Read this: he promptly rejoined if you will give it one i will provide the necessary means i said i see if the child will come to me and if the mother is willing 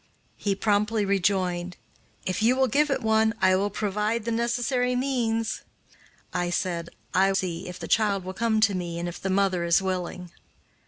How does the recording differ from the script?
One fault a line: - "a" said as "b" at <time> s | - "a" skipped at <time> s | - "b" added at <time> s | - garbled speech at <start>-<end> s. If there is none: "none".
none